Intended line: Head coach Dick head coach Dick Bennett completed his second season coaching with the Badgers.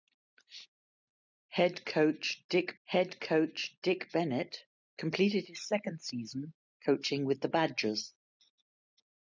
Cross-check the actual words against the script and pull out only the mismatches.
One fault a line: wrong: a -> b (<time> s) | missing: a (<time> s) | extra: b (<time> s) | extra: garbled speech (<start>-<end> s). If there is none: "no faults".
no faults